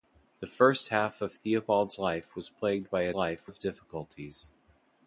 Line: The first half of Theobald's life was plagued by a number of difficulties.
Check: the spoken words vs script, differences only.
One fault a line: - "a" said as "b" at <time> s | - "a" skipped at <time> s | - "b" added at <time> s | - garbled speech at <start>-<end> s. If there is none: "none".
- "number" said as "life" at 3.1 s